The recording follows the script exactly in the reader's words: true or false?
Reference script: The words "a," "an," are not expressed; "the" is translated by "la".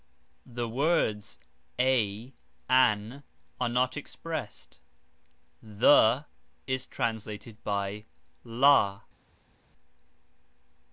true